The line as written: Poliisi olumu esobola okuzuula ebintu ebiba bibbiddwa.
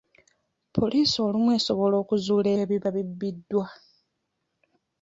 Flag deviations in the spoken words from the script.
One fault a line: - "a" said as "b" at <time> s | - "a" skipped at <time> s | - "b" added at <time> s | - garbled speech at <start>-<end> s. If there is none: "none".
- "ebintu" skipped at 2.5 s